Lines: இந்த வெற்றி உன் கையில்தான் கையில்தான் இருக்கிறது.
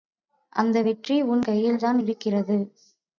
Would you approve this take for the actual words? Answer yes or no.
no